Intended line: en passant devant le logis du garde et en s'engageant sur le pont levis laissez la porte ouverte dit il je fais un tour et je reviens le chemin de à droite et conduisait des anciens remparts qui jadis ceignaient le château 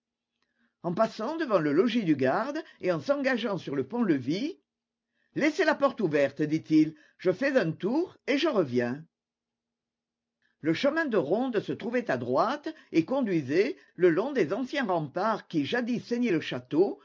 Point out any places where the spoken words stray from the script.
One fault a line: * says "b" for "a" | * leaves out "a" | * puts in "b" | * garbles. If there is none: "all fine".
* puts in "ronde se trouvait"
* puts in "le long"